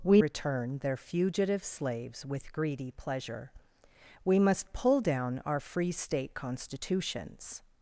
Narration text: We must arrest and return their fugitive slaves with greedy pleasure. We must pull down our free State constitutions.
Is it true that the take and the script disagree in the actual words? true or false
true